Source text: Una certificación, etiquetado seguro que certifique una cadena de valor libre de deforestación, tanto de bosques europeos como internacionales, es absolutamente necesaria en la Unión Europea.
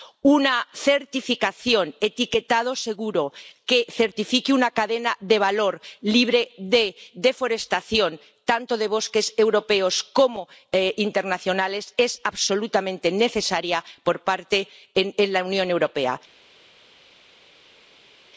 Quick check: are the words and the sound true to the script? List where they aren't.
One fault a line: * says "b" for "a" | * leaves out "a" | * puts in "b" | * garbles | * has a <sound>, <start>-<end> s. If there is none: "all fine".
all fine